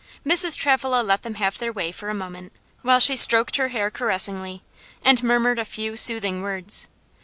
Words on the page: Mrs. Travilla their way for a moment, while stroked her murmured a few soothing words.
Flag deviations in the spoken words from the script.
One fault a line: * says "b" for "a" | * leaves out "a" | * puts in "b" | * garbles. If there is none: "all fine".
* puts in "let them have"
* puts in "she"
* puts in "hair caressingly and"